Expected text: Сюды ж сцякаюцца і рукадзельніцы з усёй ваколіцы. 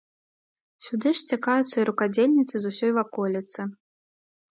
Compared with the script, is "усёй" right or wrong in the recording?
right